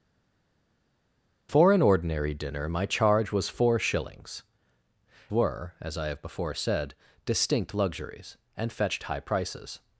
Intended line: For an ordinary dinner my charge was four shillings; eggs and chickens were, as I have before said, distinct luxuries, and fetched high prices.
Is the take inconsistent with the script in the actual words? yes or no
yes